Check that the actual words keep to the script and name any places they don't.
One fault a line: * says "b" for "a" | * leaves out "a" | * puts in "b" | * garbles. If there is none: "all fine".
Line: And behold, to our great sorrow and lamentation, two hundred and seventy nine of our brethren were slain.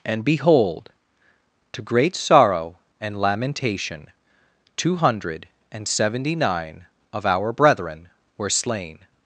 * leaves out "our"